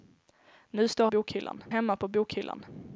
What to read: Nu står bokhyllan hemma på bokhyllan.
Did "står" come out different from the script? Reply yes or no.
no